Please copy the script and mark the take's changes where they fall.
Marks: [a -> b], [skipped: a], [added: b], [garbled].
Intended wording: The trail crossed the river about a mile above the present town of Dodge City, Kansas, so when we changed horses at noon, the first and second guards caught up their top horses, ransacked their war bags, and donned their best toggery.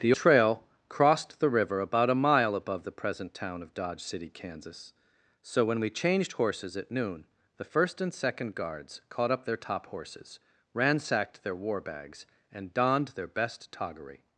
The trail crossed the river about a mile above the present town of Dodge City, Kansas, so when we changed horses at noon, the first and second guards caught up their top horses, ransacked their war bags, and donned their best toggery.